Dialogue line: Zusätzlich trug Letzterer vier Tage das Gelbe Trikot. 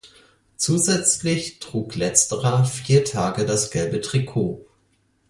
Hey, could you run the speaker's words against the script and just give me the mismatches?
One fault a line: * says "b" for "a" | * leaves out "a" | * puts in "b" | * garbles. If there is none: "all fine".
all fine